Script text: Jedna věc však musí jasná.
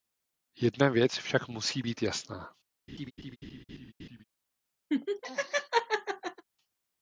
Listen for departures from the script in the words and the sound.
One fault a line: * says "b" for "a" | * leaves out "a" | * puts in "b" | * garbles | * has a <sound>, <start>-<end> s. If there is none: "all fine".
* puts in "být"
* has a laugh, 2.9-4.2 s
* has a laugh, 4.9-6.4 s